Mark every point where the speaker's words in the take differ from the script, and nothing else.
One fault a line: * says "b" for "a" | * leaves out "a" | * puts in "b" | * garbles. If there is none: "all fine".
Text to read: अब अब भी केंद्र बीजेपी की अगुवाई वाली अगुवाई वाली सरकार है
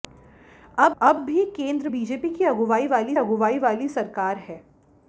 all fine